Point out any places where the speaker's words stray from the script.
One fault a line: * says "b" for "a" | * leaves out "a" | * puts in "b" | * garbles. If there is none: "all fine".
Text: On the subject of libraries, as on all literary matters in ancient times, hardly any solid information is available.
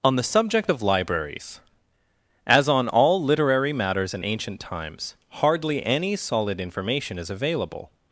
all fine